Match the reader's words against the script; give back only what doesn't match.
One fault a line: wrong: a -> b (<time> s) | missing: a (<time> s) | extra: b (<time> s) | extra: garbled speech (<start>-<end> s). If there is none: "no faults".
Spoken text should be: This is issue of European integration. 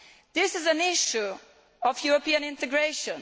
extra: an (0.7 s)